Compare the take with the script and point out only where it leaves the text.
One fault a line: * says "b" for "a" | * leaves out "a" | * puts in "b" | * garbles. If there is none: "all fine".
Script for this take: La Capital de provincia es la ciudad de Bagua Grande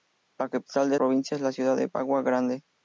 all fine